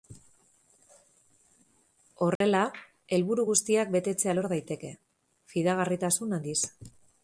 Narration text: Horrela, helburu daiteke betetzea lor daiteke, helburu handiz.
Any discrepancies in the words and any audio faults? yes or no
yes